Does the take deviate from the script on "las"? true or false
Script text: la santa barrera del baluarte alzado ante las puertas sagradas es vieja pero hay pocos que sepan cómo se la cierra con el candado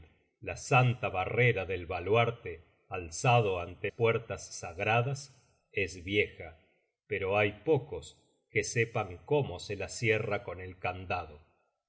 true